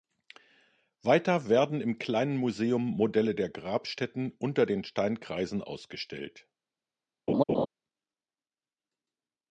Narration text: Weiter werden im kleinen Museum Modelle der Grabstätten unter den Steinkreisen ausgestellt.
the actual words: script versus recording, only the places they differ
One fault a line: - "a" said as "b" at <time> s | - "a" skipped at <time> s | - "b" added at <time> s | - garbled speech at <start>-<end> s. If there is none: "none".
none